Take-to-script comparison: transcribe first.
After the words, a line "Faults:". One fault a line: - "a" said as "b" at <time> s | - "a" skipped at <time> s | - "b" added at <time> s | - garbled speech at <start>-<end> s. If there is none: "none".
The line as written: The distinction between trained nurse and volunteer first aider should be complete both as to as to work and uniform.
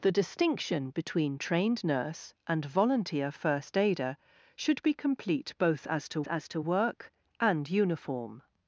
The distinction between trained nurse and volunteer first aider should be complete both as to as to work and uniform.
Faults:
none